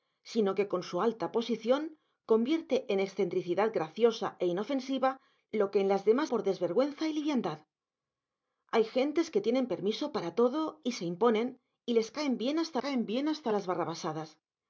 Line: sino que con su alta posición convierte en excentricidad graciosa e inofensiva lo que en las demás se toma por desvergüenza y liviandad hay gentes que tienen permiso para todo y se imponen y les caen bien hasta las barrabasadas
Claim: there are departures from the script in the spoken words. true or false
true